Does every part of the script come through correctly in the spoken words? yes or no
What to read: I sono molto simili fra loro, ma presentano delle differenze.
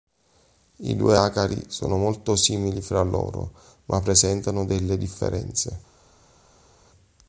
no